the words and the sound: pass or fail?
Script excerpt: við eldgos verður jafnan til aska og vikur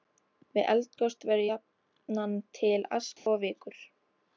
fail